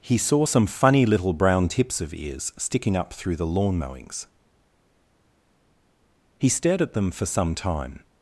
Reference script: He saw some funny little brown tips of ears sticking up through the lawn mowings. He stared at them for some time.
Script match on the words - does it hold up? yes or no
yes